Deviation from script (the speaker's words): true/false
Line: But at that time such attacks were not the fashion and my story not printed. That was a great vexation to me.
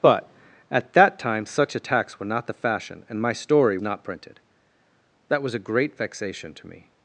false